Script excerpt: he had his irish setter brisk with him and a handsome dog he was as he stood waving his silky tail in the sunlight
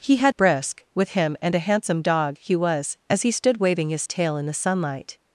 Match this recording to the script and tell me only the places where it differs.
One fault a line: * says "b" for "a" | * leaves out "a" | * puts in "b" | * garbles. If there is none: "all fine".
* leaves out "his irish setter"
* leaves out "silky"